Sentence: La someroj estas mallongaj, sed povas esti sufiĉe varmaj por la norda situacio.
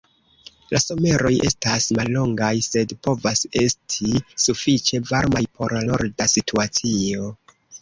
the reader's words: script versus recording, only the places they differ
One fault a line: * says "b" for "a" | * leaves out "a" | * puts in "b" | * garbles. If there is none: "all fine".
* leaves out "la"